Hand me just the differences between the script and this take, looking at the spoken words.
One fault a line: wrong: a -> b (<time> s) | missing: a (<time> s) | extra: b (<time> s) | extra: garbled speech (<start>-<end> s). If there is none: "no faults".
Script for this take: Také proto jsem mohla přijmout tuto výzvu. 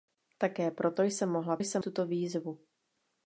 wrong: přijmout -> jsem (1.6 s)